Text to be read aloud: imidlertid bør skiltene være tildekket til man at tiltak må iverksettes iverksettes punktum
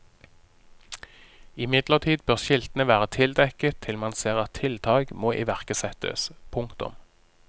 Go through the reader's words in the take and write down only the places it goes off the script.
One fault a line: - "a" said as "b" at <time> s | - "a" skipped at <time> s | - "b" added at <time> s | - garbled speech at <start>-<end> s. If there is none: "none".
- "ser" added at 4.2 s
- "iverksettes" skipped at 6.3 s